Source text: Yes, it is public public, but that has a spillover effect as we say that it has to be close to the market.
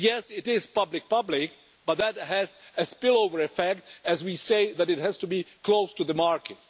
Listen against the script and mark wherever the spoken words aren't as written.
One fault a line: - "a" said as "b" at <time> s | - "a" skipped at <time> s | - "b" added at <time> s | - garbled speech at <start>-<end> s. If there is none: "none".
none